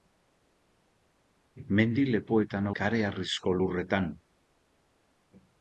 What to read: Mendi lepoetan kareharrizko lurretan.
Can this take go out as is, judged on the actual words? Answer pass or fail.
pass